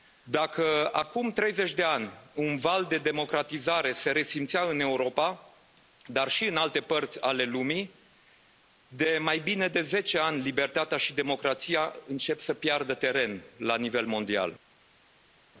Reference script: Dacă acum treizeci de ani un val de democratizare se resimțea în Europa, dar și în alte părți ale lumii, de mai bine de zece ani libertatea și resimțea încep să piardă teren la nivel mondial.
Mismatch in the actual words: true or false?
true